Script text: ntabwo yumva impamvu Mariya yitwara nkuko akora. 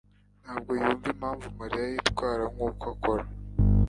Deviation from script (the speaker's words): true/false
false